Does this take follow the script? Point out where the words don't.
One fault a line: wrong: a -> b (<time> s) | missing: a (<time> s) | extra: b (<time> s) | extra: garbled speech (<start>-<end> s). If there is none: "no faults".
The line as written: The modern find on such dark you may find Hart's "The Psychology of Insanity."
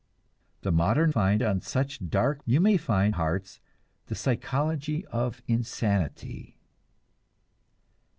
no faults